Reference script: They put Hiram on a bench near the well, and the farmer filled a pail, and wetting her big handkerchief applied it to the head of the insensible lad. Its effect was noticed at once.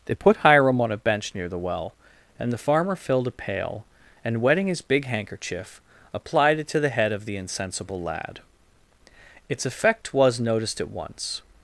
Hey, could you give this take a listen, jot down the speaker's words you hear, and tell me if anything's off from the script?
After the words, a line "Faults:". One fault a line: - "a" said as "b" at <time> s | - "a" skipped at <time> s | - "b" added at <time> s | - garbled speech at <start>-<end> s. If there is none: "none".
They put Hiram on a bench near the well, and the farmer filled a pail, and wetting his big handkerchief applied it to the head of the insensible lad. Its effect was noticed at once.
Faults:
- "her" said as "his" at 4.7 s